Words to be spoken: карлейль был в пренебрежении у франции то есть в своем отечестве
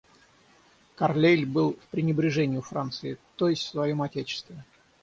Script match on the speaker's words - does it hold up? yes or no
yes